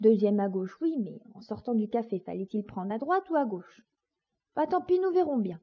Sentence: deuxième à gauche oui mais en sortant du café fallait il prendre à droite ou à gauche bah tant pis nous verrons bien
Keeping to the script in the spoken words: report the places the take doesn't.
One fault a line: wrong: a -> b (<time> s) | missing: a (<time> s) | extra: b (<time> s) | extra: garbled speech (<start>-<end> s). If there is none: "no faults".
no faults